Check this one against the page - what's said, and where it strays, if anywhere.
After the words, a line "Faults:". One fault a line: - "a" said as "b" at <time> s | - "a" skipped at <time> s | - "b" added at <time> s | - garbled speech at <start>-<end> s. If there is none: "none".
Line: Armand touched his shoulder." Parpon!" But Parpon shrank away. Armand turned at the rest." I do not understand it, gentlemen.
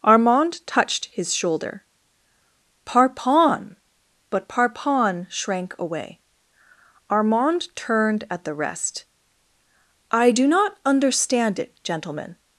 Armand touched his shoulder." Parpon!" But Parpon shrank away. Armand turned at the rest." I do not understand it, gentlemen.
Faults:
none